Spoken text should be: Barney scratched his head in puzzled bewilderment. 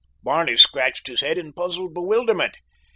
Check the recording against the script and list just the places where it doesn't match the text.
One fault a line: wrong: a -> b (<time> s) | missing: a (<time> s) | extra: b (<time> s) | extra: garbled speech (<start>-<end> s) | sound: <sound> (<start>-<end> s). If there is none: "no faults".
no faults